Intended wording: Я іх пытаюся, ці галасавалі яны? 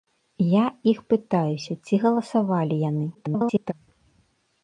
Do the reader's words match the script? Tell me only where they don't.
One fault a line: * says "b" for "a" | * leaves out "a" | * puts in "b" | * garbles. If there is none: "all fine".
* garbles